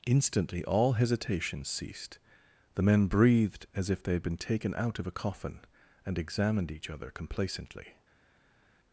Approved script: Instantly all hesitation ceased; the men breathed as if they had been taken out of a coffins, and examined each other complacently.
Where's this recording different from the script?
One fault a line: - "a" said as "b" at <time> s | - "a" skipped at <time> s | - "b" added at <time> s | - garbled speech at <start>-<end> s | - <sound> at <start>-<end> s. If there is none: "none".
- "coffins" said as "coffin" at 5.1 s